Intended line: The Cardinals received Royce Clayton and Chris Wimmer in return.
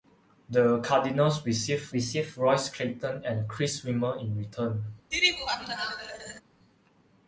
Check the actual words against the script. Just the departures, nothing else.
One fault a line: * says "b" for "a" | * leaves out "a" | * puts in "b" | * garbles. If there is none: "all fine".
* puts in "received"